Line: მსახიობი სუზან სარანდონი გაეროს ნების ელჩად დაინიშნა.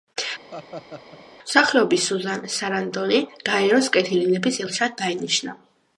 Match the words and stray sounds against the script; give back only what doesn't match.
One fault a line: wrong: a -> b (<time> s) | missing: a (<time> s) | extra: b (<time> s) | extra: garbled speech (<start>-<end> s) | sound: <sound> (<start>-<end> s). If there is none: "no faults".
sound: laugh (0.5-1.3 s)
extra: კეთილი (4.0 s)